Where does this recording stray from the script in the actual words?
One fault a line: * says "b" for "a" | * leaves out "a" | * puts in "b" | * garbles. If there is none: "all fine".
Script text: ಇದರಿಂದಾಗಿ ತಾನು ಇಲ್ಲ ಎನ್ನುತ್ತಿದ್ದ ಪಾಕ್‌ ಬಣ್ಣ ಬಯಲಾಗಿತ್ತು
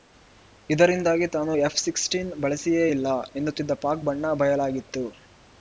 * puts in "ಎಫ್ ಹದಿನಾರು ಬಳಸಿಯೇ"